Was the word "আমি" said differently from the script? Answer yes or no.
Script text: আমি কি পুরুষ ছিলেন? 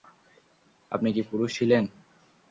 yes